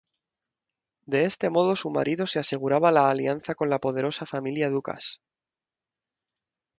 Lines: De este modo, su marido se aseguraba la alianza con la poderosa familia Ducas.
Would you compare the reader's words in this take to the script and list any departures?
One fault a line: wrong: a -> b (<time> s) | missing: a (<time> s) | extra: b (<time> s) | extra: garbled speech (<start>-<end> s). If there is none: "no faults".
no faults